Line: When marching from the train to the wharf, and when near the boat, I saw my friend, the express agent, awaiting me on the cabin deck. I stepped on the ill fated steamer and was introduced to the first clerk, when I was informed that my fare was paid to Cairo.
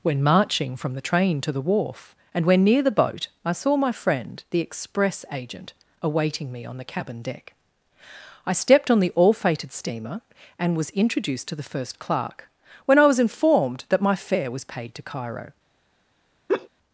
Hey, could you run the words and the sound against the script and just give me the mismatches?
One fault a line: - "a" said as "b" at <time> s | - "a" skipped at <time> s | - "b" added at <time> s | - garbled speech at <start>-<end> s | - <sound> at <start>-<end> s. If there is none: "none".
- "ill" said as "all" at 9.1 s
- laugh at 16.5-16.7 s